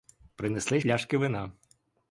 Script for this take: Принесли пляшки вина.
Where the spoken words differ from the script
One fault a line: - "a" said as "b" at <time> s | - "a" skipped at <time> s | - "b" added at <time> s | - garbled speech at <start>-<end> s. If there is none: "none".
none